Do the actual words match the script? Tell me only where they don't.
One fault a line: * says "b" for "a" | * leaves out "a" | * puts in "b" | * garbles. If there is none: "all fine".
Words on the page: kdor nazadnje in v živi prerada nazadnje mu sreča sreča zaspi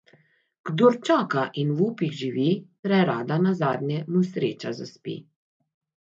* says "čaka" for "nazadnje"
* puts in "upih"
* leaves out "sreča"